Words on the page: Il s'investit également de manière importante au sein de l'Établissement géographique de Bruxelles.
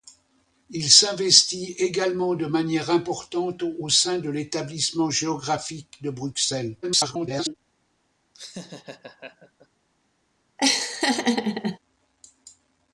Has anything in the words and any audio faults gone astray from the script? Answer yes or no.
yes